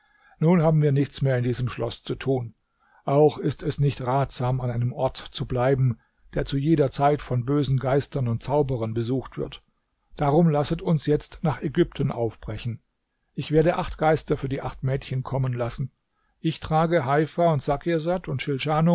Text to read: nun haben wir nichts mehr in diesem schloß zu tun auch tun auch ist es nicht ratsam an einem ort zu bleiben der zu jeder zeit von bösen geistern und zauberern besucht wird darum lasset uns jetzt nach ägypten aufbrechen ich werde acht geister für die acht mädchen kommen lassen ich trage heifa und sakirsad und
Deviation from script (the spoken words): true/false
true